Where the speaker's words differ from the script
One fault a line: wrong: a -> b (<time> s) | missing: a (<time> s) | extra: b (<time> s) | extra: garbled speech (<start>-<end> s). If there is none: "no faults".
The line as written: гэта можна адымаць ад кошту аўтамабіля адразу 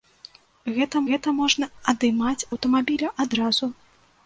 extra: гэта (1.1 s)
missing: ад кошту (2.5 s)